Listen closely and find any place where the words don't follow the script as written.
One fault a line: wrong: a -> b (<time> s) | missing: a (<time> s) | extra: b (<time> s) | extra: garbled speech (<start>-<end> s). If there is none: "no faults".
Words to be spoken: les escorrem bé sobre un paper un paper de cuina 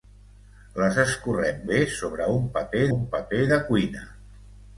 no faults